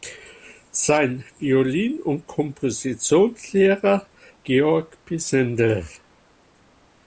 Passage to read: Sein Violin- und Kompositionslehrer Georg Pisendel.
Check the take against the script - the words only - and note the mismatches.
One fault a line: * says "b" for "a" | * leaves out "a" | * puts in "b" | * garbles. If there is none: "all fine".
all fine